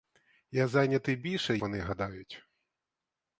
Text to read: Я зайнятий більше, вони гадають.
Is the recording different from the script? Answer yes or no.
no